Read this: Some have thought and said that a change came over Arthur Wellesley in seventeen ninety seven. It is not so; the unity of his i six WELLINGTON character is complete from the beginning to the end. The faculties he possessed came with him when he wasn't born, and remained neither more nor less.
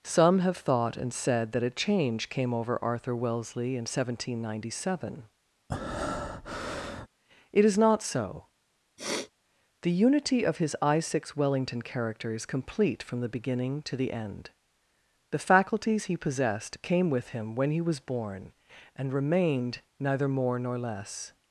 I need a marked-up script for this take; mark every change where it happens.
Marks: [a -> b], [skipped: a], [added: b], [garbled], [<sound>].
Some have thought and said that a change came over Arthur Wellesley in seventeen ninety seven. [breath] It is not so; [sniff] the unity of his i six WELLINGTON character is complete from the beginning to the end. The faculties he possessed came with him when he [wasn't -> was] born, and remained neither more nor less.